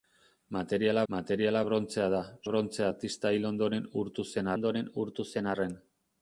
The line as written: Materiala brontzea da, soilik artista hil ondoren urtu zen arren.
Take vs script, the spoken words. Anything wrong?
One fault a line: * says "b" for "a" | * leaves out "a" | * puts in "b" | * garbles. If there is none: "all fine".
* puts in "materiala"
* says "brontzea" for "soilik"
* puts in "ondoren urtu zen"